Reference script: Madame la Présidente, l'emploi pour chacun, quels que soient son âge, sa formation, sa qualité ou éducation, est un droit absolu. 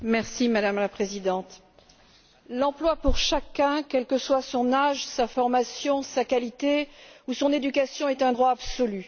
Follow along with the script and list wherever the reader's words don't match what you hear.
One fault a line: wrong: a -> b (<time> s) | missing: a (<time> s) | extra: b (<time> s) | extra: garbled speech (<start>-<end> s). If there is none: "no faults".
extra: son (7.3 s)